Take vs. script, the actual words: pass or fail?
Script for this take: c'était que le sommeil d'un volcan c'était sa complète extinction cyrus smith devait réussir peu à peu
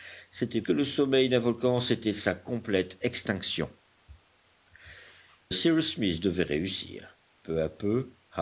pass